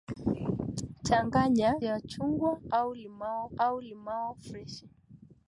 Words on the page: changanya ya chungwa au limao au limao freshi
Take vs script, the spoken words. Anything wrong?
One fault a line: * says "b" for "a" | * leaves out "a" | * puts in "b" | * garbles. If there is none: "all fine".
all fine